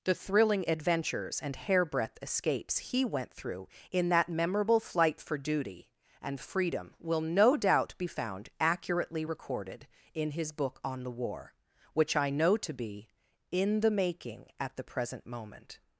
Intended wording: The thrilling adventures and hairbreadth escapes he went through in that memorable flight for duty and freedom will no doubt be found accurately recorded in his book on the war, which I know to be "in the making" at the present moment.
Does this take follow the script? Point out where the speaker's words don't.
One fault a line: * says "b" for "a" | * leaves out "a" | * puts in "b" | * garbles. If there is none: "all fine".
all fine